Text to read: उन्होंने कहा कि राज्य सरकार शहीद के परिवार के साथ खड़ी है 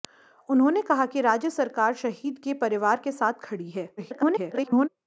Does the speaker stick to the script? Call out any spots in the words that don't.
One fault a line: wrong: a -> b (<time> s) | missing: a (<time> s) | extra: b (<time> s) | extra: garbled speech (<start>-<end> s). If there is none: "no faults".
extra: garbled speech (4.0-4.9 s)